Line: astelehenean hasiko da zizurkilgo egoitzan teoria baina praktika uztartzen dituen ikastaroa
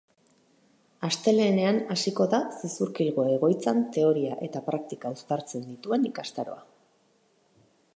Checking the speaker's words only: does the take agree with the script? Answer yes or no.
no